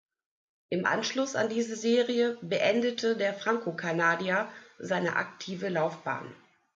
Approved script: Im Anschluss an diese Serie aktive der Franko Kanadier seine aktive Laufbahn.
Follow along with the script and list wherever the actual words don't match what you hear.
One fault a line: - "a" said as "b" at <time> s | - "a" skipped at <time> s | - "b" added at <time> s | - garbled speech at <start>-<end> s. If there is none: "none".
- "aktive" said as "beendete" at 2.4 s